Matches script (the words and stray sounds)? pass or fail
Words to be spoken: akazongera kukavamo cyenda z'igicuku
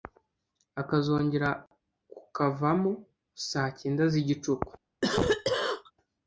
fail